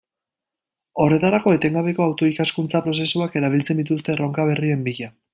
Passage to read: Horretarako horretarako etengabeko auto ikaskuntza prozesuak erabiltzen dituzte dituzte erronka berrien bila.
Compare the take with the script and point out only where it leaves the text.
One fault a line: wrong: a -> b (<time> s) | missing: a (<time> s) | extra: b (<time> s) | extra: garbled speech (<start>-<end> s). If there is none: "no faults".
missing: horretarako (1.5 s)
missing: dituzte (4.1 s)